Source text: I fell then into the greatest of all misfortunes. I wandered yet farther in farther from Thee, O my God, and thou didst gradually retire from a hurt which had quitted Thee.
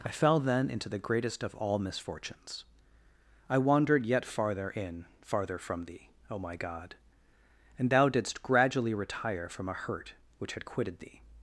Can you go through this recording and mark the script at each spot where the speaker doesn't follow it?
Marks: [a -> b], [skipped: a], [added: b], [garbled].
I fell then into the greatest of all misfortunes. I wandered yet farther in farther from Thee, O my God, and thou didst gradually retire from a hurt which had quitted Thee.